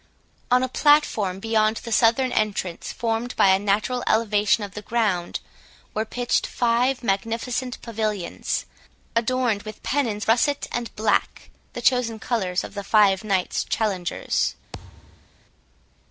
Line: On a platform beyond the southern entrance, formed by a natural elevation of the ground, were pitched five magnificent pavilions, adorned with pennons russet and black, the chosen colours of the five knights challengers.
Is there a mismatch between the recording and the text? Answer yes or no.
no